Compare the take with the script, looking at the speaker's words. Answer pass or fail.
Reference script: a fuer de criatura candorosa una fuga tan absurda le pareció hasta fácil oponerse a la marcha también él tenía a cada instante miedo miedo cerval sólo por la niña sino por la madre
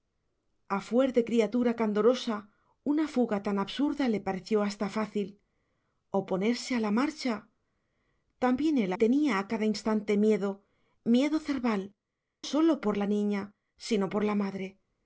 pass